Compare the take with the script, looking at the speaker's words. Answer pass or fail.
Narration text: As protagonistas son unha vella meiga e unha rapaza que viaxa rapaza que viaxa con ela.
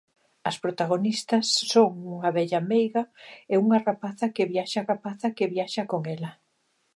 pass